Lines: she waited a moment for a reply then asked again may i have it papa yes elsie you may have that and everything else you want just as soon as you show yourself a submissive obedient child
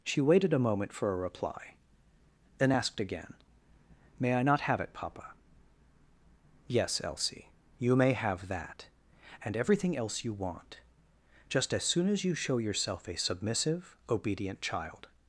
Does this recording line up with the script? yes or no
no